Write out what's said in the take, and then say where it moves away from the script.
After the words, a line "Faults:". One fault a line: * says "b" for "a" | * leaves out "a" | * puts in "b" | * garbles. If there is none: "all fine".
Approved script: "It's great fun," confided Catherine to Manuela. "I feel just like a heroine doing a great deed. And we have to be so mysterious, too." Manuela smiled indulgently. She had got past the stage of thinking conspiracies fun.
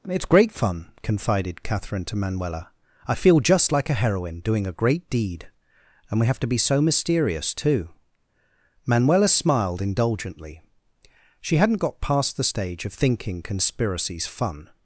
"It's great fun," confided Catherine to Manuela. "I feel just like a heroine doing a great deed. And we have to be so mysterious, too." Manuela smiled indulgently. She hadn't got past the stage of thinking conspiracies fun.
Faults:
* says "hadn't" for "had"